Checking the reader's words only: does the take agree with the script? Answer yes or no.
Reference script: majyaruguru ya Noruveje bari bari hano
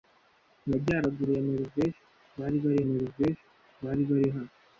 no